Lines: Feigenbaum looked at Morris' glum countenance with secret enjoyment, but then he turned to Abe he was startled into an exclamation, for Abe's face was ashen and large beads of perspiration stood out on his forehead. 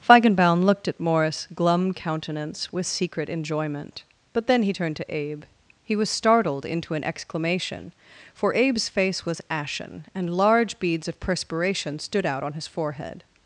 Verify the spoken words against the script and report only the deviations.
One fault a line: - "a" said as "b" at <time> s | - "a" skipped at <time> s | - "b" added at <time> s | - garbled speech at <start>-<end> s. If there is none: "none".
none